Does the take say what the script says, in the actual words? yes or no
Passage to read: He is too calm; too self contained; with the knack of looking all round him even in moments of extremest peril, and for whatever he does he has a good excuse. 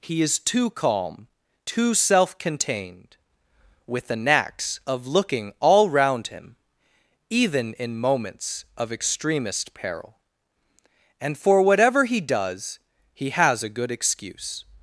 no